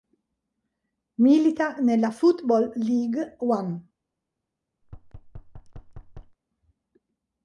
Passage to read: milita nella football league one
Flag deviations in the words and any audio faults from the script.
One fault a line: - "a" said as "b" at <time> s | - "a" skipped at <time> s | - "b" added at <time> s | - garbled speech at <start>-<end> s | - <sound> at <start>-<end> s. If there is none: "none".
- thud at 4.8-6.4 s